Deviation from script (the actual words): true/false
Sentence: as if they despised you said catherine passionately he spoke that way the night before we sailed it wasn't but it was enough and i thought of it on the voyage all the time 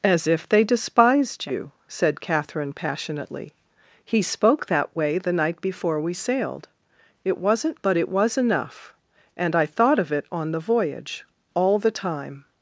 false